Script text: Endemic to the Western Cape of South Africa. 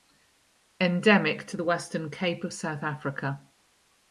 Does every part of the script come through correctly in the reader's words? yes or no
yes